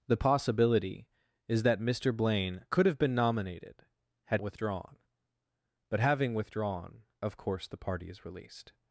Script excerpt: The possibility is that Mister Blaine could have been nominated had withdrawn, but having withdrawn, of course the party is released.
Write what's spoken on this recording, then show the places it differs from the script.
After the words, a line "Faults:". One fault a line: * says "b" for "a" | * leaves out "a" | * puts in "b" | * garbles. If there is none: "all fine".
The possibility is that Mister Blaine could have been nominated had withdrawn, but having withdrawn, of course the party is released.
Faults:
all fine